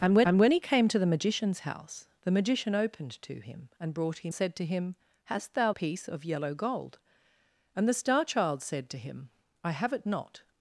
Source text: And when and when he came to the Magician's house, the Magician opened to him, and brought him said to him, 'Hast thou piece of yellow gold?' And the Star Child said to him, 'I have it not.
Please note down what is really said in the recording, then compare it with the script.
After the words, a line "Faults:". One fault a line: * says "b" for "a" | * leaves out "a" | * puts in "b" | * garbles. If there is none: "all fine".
And when and when he came to the Magician's house, the Magician opened to him, and brought him said to him, 'Hast thou piece of yellow gold?' And the Star Child said to him, 'I have it not.
Faults:
all fine